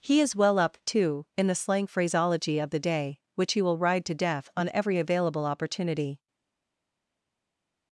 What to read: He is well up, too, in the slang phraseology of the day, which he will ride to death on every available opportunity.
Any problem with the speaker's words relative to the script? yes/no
no